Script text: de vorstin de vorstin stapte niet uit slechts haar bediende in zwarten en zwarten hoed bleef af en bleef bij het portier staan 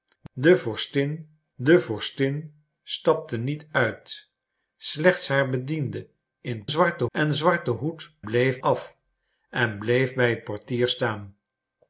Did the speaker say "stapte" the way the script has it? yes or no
yes